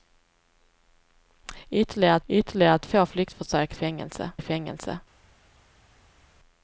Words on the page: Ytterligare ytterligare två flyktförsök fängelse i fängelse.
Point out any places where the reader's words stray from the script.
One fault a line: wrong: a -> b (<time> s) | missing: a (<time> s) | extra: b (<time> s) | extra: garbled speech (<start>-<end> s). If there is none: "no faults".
no faults